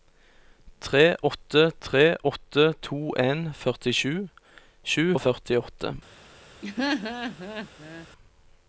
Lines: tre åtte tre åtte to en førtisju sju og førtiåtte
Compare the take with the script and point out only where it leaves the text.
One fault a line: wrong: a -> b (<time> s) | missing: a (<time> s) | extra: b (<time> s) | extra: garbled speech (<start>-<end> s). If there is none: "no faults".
no faults